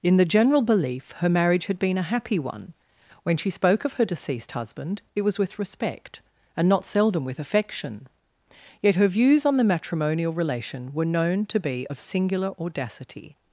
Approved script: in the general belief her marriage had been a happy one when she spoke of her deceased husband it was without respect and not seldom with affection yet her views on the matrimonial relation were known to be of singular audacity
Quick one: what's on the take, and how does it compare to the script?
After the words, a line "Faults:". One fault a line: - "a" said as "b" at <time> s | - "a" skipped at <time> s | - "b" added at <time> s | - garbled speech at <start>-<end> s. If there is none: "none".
in the general belief her marriage had been a happy one when she spoke of her deceased husband it was with respect and not seldom with affection yet her views on the matrimonial relation were known to be of singular audacity
Faults:
- "without" said as "with" at 5.4 s